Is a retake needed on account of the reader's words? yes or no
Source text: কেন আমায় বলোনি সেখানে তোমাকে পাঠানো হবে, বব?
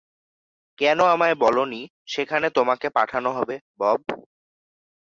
no